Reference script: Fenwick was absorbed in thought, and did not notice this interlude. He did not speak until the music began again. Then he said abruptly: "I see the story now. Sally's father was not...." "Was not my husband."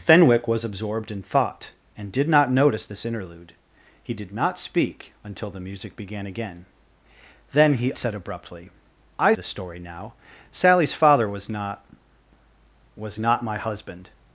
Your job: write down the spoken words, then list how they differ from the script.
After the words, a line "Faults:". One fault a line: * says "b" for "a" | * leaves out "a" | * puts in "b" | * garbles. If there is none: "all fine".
Fenwick was absorbed in thought, and did not notice this interlude. He did not speak until the music began again. Then he said abruptly: "I the story now. Sally's father was not...." "Was not my husband."
Faults:
* leaves out "see"